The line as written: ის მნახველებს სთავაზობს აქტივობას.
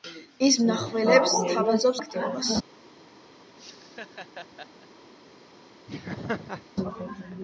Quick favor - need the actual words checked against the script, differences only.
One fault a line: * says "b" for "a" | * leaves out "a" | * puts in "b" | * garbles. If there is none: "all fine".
all fine